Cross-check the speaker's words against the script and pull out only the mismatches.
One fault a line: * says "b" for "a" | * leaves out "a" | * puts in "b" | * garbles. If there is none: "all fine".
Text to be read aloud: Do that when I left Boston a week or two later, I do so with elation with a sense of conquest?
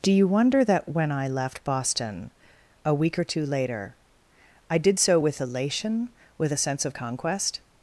* puts in "you wonder"
* says "did" for "do"